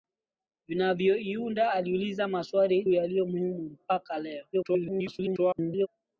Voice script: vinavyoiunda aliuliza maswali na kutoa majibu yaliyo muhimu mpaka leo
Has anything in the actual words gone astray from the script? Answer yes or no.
yes